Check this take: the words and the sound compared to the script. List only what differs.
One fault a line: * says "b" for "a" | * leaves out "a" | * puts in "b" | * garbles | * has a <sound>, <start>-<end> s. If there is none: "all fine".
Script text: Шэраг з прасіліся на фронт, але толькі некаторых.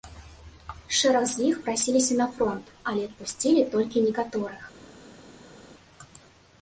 * puts in "іх"
* puts in "адпусцілі"